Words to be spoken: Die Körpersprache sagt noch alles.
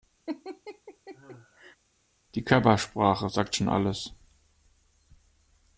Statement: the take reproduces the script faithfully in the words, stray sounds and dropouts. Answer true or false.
false